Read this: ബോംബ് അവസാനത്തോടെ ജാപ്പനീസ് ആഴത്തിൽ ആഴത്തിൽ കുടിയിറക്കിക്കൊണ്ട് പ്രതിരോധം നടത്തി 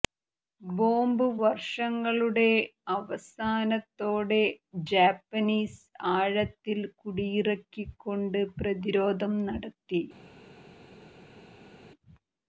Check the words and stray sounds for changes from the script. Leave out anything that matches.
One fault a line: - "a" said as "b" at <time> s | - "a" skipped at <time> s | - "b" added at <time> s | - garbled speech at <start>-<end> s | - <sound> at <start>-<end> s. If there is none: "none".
- "വർഷങ്ങളുടെ" added at 1.4 s
- "ആഴത്തിൽ" skipped at 6.8 s